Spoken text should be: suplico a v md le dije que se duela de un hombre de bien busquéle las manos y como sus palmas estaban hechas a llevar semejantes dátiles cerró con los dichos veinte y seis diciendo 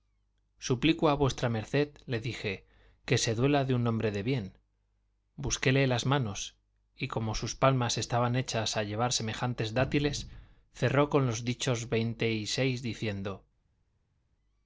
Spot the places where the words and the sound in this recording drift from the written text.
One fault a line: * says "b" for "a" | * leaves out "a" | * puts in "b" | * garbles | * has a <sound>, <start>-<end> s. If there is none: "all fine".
all fine